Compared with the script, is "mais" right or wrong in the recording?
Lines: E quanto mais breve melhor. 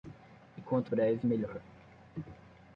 wrong